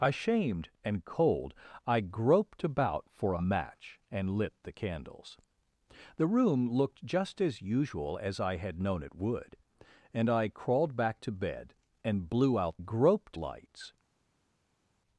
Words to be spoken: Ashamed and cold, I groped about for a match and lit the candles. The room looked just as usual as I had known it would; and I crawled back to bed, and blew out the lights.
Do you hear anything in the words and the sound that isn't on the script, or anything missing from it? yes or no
yes